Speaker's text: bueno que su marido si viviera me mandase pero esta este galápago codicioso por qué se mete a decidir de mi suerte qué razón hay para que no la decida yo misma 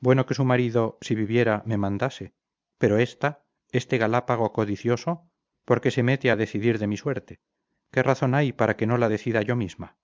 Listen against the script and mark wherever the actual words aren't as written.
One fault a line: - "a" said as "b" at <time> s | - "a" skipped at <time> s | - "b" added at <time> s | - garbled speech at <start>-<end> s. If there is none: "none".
none